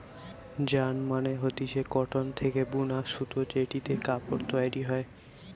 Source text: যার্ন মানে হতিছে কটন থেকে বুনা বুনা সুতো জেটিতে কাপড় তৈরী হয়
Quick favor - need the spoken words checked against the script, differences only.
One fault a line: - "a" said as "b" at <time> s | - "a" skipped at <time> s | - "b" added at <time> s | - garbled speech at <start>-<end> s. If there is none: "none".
- "বুনা" skipped at 3.0 s